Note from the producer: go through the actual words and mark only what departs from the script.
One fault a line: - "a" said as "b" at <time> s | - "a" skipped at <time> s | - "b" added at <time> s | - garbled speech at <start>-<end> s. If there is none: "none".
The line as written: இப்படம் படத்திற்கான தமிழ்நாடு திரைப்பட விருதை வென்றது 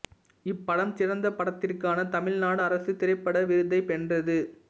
- "சிறந்த" added at 0.9 s
- "அரசு" added at 2.6 s